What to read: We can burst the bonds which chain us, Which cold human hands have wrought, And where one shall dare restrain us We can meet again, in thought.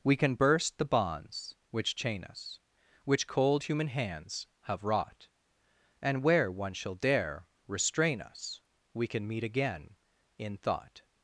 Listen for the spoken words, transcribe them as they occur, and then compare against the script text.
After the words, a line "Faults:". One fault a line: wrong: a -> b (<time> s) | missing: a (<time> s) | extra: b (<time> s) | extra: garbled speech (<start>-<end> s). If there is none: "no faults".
We can burst the bonds which chain us, Which cold human hands have wrought, And where one shall dare restrain us We can meet again, in thought.
Faults:
no faults